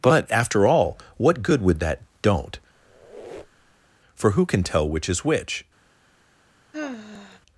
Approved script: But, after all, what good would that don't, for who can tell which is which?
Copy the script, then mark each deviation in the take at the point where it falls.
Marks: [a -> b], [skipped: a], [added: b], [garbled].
But, after all, what good would that don't, for who can tell which is which?